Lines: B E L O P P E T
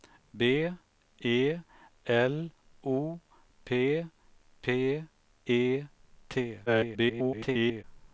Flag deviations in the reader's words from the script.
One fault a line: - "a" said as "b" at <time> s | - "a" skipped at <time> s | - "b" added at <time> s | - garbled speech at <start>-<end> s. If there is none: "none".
- garbled speech at 6.7-7.8 s